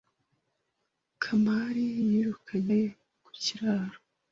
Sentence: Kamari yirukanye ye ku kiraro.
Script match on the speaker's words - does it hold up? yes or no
yes